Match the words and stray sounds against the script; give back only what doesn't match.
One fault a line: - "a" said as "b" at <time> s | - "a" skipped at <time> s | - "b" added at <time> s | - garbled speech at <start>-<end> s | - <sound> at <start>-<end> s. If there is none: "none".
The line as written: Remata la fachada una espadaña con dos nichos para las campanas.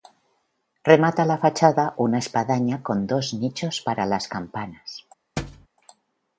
- thud at 5.4-5.7 s